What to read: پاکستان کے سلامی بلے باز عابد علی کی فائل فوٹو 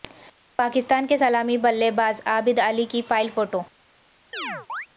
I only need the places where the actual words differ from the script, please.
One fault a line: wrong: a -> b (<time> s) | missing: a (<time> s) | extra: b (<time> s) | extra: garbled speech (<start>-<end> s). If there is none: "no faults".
no faults